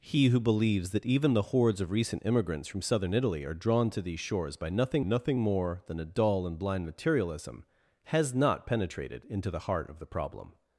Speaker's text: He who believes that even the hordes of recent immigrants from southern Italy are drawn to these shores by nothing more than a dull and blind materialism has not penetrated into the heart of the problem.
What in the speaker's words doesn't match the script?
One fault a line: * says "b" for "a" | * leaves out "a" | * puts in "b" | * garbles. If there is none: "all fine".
* puts in "nothing"